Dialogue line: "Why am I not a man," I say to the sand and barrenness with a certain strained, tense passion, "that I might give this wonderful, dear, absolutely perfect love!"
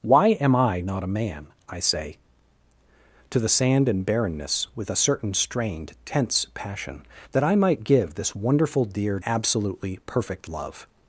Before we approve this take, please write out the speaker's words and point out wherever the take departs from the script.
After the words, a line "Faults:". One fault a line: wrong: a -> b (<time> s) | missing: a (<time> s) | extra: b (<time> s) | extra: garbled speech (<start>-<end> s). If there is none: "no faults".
"Why am I not a man," I say to the sand and barrenness with a certain strained, tense passion, "that I might give this wonderful, dear, absolutely perfect love!"
Faults:
no faults